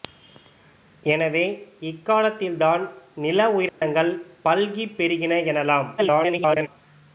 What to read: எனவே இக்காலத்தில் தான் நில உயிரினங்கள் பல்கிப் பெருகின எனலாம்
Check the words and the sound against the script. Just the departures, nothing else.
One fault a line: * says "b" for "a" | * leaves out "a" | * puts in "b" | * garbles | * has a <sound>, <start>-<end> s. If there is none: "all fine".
* has a dropout, 3.7-3.8 s
* garbles